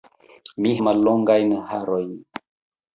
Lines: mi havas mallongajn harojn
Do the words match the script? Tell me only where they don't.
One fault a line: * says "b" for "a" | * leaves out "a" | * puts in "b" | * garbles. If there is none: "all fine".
* leaves out "havas"